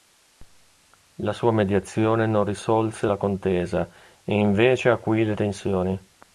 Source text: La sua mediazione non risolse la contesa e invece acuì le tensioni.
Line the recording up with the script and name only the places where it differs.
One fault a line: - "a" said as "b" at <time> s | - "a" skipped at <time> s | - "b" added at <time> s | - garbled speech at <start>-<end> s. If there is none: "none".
none